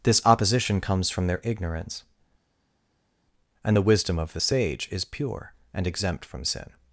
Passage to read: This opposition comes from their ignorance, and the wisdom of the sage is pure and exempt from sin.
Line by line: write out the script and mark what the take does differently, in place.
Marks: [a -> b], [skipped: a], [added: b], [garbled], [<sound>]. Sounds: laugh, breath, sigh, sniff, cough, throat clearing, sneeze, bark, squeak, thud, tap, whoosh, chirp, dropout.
This opposition comes from their ignorance, and the wisdom of the sage is pure and exempt from sin.